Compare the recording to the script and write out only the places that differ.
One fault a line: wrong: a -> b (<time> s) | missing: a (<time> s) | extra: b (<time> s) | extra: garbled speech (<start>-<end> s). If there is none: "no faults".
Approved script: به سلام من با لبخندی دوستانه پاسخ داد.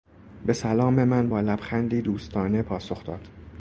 no faults